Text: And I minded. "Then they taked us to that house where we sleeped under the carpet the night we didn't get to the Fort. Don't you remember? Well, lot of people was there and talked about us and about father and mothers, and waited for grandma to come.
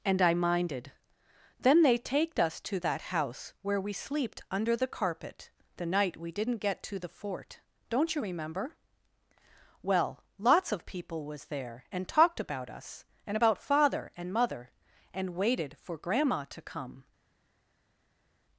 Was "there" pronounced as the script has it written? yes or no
yes